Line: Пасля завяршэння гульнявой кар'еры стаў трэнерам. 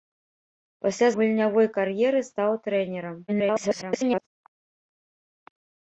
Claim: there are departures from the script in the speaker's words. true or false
true